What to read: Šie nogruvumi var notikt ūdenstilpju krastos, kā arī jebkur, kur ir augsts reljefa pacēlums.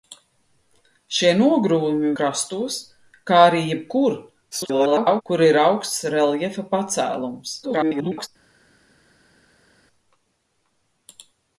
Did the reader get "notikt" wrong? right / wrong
wrong